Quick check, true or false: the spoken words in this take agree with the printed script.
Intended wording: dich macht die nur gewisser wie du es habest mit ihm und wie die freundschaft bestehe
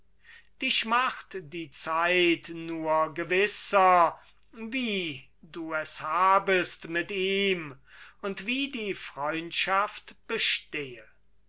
false